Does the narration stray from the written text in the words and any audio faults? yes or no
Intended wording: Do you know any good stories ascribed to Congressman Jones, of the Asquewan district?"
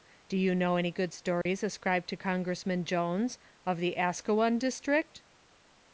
yes